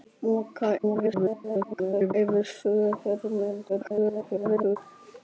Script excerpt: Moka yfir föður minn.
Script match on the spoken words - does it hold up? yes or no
no